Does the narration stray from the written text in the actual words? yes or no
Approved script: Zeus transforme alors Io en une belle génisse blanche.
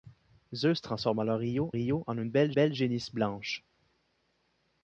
yes